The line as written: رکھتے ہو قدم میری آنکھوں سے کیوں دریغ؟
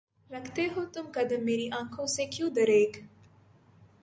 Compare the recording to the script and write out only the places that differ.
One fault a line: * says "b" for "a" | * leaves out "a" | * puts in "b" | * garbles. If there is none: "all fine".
* puts in "تم"